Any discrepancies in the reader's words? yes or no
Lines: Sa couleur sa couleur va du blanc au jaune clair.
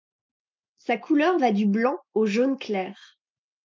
yes